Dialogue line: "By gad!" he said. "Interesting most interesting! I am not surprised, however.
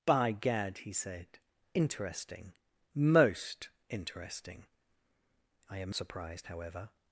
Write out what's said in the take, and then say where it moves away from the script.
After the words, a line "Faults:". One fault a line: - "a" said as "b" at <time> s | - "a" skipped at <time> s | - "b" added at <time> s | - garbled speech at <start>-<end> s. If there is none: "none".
"By gad!" he said. "Interesting most interesting! I am surprised, however.
Faults:
- "not" skipped at 6.0 s